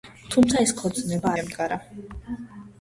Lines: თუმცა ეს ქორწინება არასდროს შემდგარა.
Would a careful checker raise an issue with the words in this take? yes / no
yes